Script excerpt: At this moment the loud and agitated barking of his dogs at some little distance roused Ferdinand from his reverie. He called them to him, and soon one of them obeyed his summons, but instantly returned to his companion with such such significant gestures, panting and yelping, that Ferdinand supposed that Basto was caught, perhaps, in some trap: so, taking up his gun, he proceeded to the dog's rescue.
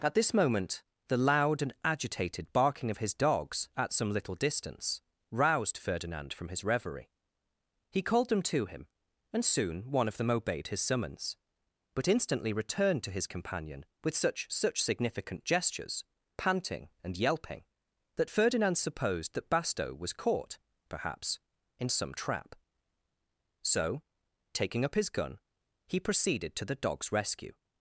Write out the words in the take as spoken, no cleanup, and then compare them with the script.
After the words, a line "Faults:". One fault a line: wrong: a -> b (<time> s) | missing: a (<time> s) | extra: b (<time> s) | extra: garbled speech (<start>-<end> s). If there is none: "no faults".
At this moment the loud and agitated barking of his dogs at some little distance roused Ferdinand from his reverie. He called them to him, and soon one of them obeyed his summons, but instantly returned to his companion with such such significant gestures, panting and yelping, that Ferdinand supposed that Basto was caught, perhaps, in some trap: so, taking up his gun, he proceeded to the dog's rescue.
Faults:
no faults